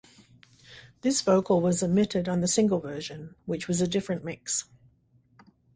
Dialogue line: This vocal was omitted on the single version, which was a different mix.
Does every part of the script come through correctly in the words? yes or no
yes